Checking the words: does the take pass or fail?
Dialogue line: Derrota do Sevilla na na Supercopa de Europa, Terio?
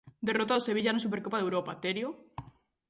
fail